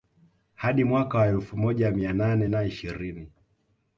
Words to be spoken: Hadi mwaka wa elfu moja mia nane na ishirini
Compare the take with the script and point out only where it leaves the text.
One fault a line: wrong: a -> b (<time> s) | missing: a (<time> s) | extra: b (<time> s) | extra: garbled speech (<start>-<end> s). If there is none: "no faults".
no faults